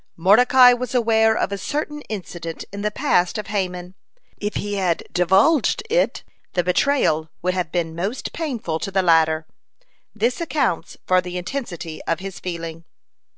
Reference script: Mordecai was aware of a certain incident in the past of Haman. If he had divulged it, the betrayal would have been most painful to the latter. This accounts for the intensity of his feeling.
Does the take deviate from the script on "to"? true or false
false